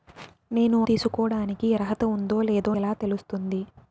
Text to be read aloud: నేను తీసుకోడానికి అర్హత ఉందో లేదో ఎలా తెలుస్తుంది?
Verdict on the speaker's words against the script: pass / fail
pass